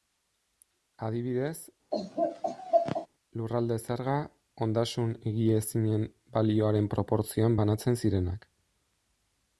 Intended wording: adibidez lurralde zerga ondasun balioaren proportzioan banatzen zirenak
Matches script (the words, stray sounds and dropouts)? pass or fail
fail